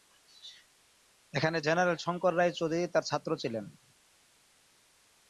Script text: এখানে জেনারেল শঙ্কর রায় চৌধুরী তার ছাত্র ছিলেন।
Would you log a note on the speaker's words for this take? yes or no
no